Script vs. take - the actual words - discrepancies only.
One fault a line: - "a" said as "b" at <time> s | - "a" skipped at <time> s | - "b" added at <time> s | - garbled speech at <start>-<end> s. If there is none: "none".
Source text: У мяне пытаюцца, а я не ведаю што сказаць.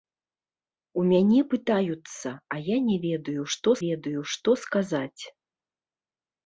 - "ведаю што" added at 3.8 s